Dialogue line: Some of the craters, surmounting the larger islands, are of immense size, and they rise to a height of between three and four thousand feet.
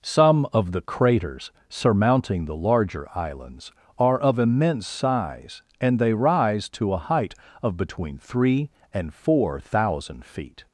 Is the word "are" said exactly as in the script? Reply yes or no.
yes